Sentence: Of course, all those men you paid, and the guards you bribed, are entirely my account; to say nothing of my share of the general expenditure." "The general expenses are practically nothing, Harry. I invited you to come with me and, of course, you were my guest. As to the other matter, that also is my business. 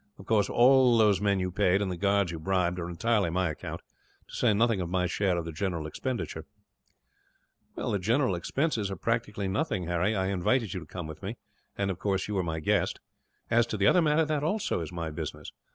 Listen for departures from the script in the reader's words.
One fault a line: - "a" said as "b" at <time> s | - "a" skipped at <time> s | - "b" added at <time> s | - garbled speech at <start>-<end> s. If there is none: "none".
none